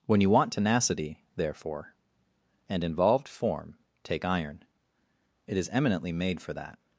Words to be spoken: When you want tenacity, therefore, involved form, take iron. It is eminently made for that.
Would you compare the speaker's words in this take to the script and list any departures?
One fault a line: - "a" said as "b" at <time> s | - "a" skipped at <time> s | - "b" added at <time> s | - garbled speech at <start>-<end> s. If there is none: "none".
- "and" added at 2.7 s